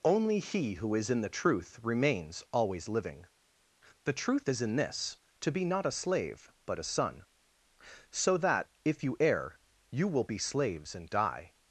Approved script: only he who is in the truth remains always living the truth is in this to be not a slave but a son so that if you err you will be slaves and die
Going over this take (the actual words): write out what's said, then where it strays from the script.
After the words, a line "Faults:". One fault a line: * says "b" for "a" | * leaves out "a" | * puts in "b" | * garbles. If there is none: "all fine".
only he who is in the truth remains always living the truth is in this to be not a slave but a son so that if you err you will be slaves and die
Faults:
all fine